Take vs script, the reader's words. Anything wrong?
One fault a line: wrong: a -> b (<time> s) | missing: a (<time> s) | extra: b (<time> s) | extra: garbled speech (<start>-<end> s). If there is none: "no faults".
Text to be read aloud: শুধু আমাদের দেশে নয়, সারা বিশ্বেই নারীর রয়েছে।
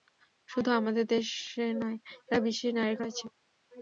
no faults